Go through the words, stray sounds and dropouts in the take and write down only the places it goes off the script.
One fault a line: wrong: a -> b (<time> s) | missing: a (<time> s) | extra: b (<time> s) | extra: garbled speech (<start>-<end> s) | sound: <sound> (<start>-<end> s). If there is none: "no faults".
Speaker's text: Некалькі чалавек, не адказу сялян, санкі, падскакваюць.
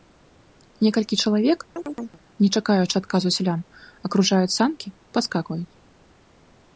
sound: chirp (1.8-2.2 s)
extra: чакаючы (2.6 s)
extra: акружаюць (4.1 s)